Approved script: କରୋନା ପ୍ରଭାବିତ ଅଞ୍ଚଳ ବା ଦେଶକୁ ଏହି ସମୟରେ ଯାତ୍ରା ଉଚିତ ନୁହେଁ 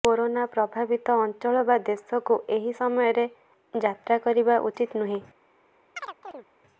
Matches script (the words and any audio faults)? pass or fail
fail